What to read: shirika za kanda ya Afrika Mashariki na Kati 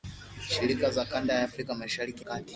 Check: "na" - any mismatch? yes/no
yes